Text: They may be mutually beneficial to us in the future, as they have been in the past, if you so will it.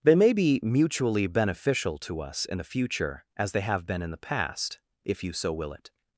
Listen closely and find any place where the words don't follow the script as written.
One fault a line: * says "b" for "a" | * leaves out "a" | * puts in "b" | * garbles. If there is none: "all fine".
all fine